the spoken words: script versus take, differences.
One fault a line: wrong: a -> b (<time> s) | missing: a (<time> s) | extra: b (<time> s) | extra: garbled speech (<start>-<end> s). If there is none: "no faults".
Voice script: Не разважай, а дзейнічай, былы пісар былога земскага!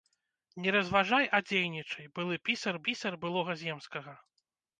extra: пісар (2.9 s)